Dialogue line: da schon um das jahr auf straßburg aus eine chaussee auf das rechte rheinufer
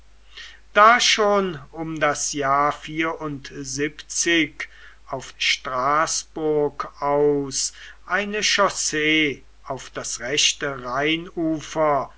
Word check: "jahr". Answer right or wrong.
right